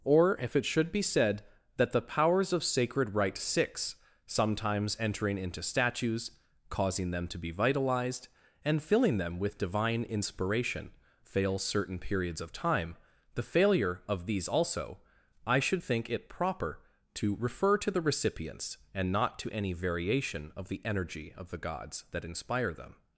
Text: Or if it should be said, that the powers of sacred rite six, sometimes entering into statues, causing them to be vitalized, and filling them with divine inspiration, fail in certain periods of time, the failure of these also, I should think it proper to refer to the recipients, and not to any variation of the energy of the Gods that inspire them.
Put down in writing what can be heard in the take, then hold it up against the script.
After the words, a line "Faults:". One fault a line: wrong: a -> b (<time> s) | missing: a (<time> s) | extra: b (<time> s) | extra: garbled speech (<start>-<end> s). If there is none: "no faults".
Or if it should be said, that the powers of sacred rite six, sometimes entering into statues, causing them to be vitalized, and filling them with divine inspiration, fail certain periods of time, the failure of these also, I should think it proper to refer to the recipients, and not to any variation of the energy of the Gods that inspire them.
Faults:
missing: in (11.6 s)